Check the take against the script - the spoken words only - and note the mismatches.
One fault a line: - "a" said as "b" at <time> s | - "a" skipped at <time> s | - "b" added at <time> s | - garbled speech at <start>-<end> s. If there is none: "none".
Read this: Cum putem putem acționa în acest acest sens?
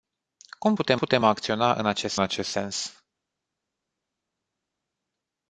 none